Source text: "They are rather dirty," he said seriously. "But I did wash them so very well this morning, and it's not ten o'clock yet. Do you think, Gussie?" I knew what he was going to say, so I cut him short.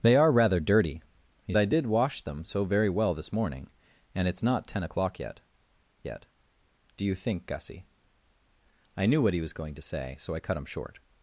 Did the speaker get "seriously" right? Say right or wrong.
wrong